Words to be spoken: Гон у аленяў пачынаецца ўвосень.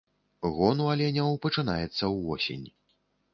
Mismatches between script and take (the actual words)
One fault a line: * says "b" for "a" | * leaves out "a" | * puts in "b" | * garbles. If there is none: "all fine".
all fine